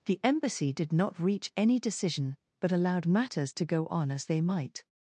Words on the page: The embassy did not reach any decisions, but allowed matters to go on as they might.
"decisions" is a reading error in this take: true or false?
true